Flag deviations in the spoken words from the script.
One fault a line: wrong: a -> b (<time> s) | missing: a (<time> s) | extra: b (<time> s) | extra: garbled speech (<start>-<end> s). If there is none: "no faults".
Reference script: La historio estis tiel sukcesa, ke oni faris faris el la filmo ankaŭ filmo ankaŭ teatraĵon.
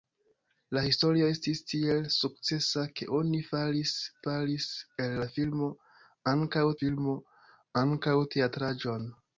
no faults